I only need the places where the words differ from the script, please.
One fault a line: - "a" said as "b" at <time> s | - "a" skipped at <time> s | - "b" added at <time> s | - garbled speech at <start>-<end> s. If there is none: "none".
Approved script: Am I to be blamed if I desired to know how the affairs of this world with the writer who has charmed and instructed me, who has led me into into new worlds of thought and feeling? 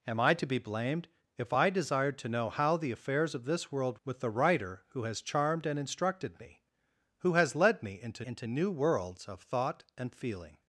none